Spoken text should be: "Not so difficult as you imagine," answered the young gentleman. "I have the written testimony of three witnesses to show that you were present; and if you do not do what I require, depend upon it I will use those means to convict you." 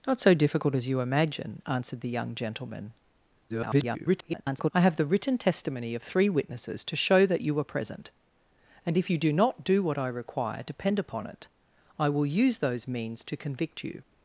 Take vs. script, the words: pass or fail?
fail